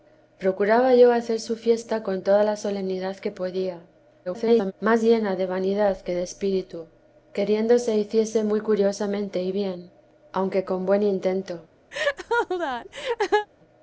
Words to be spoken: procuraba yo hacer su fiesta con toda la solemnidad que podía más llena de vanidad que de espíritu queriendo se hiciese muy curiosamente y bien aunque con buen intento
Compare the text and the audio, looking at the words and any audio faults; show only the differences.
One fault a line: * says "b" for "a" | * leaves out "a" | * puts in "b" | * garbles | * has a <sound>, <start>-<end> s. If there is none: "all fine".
* garbles
* has a laugh, 11.9-13.5 s